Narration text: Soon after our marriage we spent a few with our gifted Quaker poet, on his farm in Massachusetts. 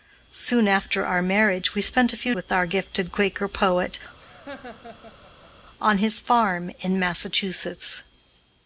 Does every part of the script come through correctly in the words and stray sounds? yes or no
no